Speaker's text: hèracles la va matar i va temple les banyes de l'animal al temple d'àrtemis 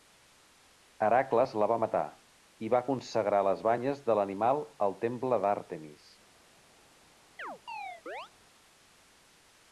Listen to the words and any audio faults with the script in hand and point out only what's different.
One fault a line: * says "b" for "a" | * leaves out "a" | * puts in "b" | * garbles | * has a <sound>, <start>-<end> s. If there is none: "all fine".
* says "consagrar" for "temple"
* has a chirp, 7.4-8.3 s